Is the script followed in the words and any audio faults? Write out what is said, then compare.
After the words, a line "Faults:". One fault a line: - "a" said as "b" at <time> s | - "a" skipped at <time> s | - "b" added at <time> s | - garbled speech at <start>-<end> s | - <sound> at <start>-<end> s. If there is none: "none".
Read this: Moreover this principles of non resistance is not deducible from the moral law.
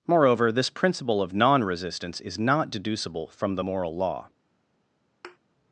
Moreover this principle of non resistance is not deducible from the moral law.
Faults:
- "principles" said as "principle" at 0.7 s
- thud at 5.2-5.4 s